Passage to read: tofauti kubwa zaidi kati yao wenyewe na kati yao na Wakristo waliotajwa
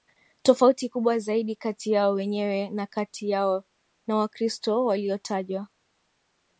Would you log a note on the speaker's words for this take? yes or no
no